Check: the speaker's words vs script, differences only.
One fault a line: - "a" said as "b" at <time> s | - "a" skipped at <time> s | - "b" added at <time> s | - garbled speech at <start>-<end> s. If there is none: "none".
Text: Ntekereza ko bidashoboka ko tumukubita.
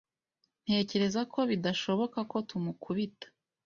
none